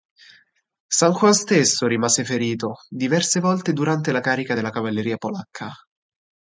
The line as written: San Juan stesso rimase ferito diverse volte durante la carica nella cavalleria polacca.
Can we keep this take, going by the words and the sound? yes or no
no